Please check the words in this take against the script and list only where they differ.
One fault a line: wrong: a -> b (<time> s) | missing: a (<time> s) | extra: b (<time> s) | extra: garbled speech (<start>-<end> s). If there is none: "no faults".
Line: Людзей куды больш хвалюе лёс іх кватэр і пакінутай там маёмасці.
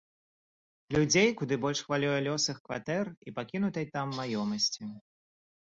no faults